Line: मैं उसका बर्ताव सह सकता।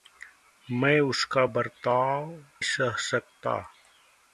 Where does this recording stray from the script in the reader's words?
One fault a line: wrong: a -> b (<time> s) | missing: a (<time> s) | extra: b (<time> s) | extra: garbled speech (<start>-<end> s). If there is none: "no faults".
no faults